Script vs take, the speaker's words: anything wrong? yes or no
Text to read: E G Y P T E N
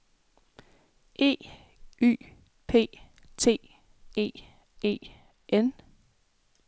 yes